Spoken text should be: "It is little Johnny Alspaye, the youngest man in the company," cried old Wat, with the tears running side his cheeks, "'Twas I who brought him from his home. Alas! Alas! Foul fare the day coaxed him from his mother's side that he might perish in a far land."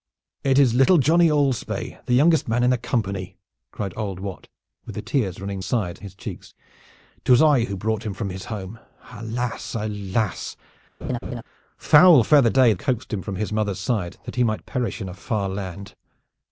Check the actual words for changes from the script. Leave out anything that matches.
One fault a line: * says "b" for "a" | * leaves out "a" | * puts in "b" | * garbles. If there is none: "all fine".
all fine